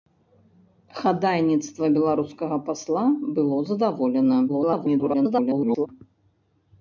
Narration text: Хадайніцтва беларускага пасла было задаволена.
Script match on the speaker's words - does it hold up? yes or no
no